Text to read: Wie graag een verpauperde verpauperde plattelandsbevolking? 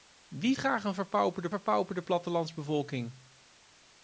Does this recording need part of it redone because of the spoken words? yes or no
no